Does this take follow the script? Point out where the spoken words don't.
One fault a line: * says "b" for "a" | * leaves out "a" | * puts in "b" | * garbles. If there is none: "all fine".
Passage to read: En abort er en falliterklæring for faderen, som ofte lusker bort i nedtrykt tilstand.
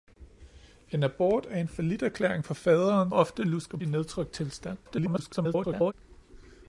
* leaves out "som"
* leaves out "bort"
* garbles